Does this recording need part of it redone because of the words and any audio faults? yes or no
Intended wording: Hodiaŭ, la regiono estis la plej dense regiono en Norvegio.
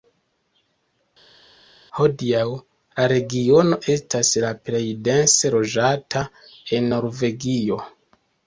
yes